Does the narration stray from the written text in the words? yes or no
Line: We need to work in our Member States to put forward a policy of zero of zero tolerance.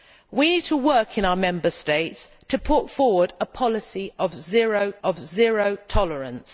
no